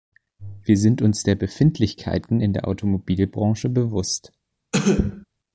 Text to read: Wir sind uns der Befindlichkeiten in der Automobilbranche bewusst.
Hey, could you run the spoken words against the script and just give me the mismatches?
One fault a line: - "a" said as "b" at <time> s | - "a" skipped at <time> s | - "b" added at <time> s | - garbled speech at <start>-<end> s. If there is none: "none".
none